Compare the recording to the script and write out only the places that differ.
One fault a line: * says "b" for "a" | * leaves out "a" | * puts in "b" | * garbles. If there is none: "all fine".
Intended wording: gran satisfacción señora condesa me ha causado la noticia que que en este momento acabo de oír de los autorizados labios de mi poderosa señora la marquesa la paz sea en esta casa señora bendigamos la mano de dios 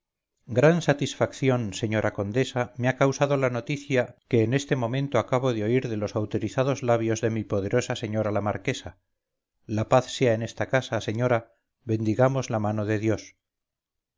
* leaves out "que"